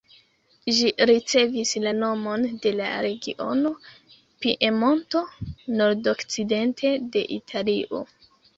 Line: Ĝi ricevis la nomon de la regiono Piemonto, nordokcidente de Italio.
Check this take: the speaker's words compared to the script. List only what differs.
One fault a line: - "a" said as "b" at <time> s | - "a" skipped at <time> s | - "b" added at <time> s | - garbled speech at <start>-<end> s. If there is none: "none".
none